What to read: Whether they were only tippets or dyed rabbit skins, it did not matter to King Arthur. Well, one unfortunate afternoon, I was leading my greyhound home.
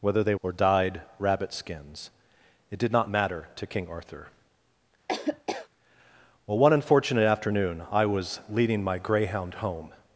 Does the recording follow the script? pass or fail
fail